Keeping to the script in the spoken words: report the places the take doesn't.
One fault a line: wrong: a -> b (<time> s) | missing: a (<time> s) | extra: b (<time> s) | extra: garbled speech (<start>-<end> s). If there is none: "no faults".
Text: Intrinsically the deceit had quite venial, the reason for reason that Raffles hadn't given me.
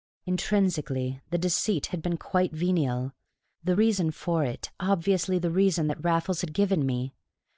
extra: been (2.0 s)
extra: it obviously the (4.4 s)
wrong: hadn't -> had (6.4 s)